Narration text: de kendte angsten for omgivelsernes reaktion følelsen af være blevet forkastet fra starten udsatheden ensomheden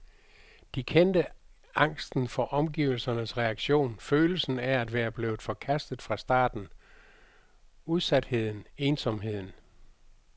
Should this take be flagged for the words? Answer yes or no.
yes